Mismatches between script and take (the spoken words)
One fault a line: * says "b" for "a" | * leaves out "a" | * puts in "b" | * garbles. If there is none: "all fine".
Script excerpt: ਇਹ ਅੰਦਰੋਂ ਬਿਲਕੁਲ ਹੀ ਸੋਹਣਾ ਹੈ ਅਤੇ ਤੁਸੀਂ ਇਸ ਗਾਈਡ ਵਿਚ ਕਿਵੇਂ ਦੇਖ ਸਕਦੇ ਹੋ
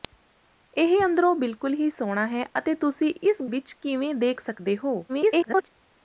* leaves out "ਗਾਈਡ"
* garbles